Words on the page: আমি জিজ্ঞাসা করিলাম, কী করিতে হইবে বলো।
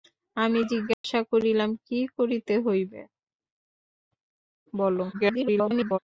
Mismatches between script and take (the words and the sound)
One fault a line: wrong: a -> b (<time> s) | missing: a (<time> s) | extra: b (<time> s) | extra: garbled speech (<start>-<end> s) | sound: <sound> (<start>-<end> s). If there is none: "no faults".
sound: dropout (0.9-1.0 s)
extra: garbled speech (5.1-6.0 s)